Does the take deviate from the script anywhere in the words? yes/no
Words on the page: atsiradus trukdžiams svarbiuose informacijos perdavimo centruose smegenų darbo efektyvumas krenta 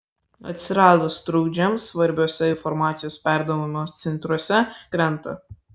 yes